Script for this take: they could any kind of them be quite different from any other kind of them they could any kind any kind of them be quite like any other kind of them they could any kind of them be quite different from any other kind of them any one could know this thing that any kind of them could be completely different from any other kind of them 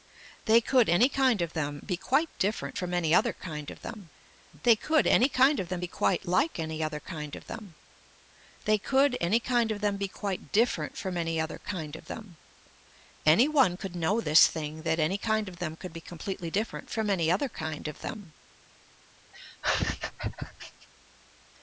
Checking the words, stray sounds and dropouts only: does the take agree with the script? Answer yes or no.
no